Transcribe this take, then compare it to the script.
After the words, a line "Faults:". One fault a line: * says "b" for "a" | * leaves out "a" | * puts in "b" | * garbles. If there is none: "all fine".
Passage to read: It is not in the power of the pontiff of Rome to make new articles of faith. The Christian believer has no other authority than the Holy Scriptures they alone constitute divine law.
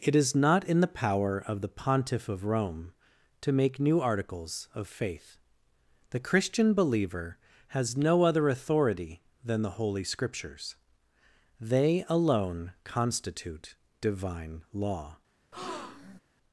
It is not in the power of the pontiff of Rome to make new articles of faith. The Christian believer has no other authority than the Holy Scriptures they alone constitute divine law.
Faults:
all fine